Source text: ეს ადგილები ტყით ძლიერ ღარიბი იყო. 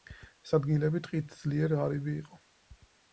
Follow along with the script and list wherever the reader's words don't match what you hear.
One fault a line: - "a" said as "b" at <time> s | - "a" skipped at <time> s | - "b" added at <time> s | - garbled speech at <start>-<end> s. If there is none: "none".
none